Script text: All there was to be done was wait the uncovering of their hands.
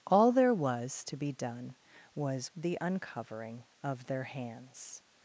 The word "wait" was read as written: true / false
false